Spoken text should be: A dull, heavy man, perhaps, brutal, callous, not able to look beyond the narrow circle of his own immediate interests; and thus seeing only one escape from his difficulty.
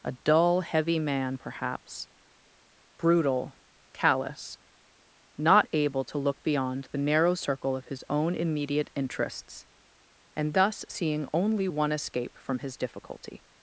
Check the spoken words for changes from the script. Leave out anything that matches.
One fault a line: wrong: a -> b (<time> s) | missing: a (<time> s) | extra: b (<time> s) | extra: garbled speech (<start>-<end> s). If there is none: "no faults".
no faults